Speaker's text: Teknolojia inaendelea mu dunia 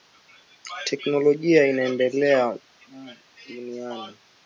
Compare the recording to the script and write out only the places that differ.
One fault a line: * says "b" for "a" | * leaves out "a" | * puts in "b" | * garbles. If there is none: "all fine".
all fine